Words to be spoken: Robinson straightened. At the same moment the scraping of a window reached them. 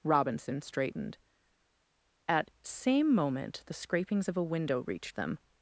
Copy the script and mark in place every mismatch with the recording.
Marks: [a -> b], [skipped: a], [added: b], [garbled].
Robinson straightened. At [skipped: the] same moment the [scraping -> scrapings] of a window reached them.